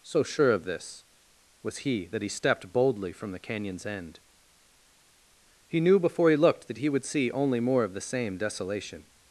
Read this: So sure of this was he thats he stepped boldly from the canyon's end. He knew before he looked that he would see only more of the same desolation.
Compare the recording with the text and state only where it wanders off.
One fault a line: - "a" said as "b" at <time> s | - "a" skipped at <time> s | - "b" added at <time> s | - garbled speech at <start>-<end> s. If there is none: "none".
- "thats" said as "that" at 2.1 s